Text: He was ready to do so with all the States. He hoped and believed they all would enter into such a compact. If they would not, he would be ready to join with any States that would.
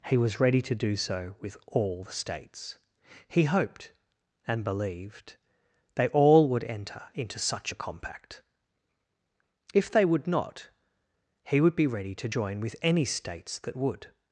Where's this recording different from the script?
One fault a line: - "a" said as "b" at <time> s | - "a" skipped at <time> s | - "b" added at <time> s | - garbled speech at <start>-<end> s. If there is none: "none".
none